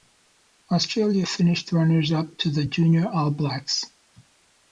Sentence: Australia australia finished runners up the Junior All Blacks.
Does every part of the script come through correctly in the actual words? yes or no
no